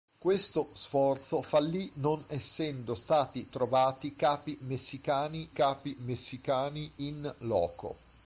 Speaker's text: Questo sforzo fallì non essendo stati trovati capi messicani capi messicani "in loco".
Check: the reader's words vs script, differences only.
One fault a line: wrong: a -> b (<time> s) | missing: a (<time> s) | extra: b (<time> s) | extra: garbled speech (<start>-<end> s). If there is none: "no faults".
no faults